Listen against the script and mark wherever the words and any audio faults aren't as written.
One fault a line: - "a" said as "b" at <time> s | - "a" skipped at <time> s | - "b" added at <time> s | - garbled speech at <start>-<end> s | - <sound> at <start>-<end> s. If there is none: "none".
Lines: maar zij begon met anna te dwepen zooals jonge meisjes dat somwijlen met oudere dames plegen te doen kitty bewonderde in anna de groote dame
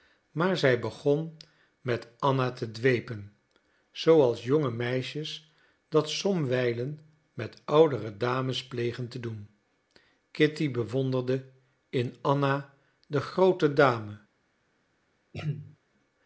- throat clearing at 15.3-15.8 s